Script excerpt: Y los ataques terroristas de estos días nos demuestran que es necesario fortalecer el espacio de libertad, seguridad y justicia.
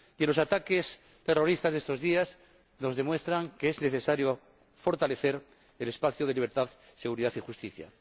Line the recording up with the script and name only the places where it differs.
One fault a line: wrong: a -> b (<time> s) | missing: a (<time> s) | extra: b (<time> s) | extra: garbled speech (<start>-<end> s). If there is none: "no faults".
no faults